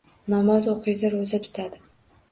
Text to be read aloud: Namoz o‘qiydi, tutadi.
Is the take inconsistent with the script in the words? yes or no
yes